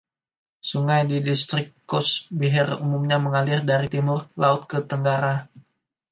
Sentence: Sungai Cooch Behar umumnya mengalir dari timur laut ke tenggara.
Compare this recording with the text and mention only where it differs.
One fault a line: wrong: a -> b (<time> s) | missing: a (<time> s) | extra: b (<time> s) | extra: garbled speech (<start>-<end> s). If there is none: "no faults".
extra: di distrik (1.1 s)